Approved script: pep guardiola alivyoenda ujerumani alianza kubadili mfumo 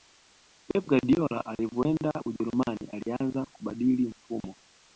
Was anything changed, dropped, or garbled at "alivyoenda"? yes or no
no